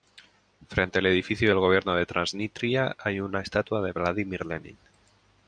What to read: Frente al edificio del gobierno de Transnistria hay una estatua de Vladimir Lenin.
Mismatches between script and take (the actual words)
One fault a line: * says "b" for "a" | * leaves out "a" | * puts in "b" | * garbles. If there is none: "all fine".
all fine